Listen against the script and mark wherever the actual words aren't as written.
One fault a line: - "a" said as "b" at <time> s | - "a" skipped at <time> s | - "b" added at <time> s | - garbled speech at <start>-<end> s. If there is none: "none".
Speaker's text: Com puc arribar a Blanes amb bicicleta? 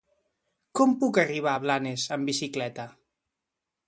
none